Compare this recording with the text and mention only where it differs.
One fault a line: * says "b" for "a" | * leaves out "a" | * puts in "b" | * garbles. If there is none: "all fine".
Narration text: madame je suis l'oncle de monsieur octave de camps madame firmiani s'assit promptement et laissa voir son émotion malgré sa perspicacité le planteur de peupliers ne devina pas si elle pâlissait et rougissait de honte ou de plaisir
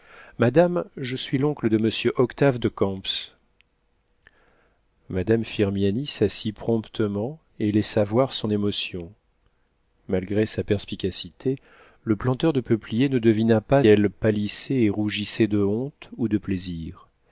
* leaves out "si"